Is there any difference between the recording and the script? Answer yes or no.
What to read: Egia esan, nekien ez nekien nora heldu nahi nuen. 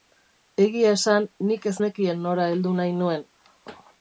yes